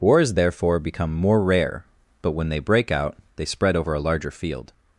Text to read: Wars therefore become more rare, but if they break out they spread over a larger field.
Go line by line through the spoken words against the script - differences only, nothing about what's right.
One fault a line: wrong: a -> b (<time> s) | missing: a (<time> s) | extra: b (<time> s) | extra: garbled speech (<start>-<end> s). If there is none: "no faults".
wrong: if -> when (2.3 s)